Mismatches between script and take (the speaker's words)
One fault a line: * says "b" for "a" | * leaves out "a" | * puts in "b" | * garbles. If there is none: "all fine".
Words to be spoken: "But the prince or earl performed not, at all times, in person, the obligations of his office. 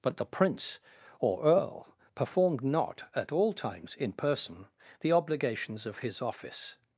all fine